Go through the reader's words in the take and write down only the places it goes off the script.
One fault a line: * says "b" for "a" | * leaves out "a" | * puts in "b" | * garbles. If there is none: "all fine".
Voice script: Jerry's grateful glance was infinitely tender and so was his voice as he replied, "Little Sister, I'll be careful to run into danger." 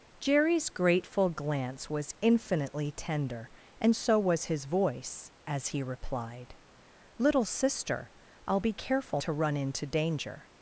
all fine